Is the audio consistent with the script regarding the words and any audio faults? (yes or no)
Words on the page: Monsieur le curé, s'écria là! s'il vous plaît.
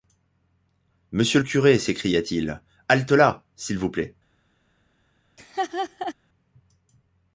no